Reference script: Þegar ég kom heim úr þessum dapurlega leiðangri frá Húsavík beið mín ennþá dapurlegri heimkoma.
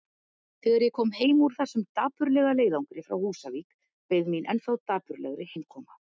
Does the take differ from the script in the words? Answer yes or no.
no